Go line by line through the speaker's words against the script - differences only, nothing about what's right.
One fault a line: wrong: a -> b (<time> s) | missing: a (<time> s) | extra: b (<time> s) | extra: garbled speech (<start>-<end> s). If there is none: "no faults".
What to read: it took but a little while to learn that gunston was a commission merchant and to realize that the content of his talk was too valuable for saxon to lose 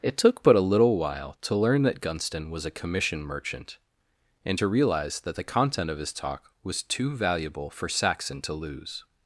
no faults